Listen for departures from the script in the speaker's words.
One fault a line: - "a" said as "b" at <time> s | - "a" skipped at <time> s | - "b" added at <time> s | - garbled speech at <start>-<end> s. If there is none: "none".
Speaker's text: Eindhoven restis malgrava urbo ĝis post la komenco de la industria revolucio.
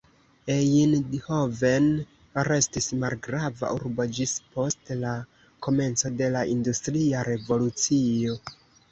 none